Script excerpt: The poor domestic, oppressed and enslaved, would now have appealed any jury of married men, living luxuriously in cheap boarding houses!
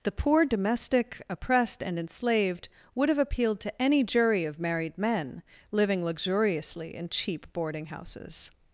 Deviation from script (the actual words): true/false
true